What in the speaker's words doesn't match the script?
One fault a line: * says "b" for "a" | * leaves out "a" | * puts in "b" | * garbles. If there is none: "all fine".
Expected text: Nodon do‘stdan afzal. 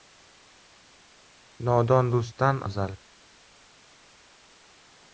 all fine